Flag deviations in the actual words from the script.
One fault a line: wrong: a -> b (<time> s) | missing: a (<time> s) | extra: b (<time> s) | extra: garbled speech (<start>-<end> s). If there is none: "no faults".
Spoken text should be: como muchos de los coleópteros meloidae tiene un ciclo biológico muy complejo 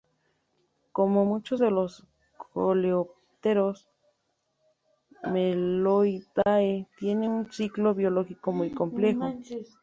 no faults